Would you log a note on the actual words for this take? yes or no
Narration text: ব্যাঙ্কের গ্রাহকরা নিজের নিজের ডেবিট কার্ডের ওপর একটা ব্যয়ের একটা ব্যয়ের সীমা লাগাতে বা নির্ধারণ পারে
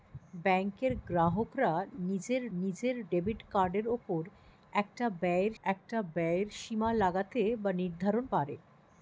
no